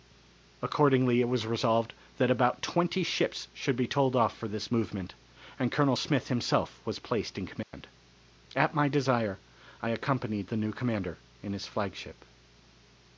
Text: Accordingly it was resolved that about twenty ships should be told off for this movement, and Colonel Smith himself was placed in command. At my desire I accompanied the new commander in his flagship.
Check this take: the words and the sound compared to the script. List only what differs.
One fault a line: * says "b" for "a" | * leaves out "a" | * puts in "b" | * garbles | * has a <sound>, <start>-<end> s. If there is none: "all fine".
* has a dropout, 7.6-7.7 s